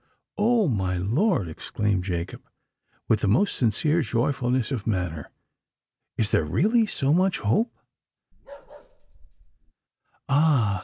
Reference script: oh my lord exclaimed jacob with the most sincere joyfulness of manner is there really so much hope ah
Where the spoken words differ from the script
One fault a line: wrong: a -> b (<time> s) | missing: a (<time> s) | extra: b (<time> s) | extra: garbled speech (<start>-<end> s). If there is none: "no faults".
no faults